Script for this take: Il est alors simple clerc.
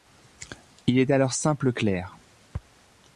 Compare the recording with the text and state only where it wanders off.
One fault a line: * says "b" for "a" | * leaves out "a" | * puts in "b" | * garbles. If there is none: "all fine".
all fine